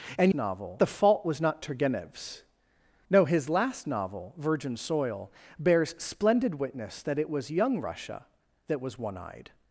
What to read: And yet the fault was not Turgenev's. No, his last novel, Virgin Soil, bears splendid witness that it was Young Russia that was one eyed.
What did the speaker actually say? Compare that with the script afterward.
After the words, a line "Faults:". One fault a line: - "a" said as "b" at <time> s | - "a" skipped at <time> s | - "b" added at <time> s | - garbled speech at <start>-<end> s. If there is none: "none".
And novel the fault was not Turgenev's. No, his last novel, Virgin Soil, bears splendid witness that it was Young Russia that was one eyed.
Faults:
- "yet" said as "novel" at 0.3 s